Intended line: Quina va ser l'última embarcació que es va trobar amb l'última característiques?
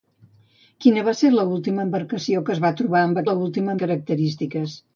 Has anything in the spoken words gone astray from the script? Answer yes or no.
no